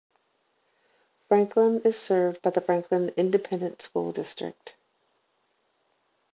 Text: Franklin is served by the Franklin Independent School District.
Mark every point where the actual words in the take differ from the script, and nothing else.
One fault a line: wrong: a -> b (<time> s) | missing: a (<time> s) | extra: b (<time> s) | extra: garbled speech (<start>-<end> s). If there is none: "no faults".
no faults